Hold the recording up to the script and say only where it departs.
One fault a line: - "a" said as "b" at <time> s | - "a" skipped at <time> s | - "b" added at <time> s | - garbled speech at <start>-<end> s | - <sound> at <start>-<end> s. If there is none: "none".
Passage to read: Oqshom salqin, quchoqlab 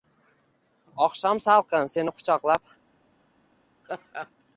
- "seni" added at 1.9 s
- laugh at 3.8-4.3 s